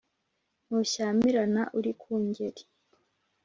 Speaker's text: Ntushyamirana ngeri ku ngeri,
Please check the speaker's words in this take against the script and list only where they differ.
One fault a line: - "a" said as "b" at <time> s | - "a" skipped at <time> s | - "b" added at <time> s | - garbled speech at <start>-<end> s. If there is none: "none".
- "ngeri" said as "uri" at 1.8 s